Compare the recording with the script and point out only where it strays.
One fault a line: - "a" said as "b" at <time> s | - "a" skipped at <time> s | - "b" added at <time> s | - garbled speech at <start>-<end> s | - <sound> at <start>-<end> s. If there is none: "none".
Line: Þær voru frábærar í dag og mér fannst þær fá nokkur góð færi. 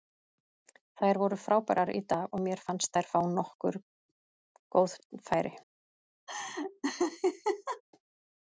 - laugh at 6.3-7.8 s